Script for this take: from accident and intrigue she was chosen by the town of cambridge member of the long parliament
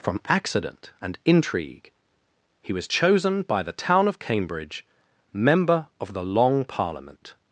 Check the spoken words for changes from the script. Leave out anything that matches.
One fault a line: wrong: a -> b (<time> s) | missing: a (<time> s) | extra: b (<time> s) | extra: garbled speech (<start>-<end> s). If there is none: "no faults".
wrong: she -> he (2.6 s)